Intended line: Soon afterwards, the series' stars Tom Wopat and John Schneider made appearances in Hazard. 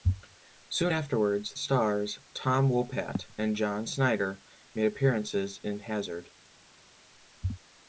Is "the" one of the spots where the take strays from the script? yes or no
yes